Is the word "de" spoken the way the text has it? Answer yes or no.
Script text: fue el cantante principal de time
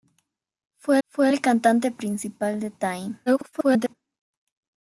yes